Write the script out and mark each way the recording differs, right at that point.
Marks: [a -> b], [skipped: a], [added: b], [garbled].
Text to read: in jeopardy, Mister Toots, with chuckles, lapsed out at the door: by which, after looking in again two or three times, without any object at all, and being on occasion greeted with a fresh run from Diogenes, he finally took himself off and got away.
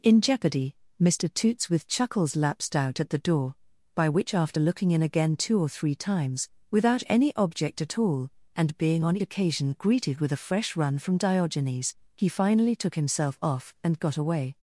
in jeopardy, Mister Toots, with chuckles, lapsed out at the door: by which, after looking in again two or three times, without any object at all, and being on occasion greeted with a fresh run from Diogenes, he finally took himself off and got away.